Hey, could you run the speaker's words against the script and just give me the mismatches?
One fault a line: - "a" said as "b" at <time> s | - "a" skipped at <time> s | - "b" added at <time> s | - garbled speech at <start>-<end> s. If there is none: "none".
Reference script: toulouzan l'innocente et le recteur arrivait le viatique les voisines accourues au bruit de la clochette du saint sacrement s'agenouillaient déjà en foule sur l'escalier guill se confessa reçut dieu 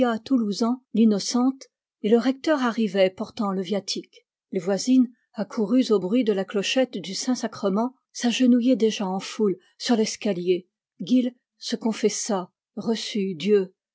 - "portant" added at 3.1 s